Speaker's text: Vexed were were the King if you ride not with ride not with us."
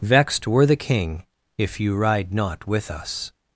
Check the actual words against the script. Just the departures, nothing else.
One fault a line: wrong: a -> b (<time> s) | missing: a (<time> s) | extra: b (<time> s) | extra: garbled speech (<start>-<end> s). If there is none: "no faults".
missing: were (0.7 s)
missing: ride not with (2.9 s)